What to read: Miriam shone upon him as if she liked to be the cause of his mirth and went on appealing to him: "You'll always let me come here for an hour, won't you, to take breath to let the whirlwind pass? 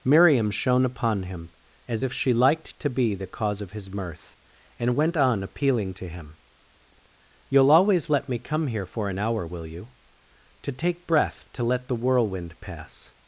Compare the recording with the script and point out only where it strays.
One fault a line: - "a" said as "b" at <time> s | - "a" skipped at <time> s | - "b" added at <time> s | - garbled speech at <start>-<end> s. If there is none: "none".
- "won't" said as "will" at 9.4 s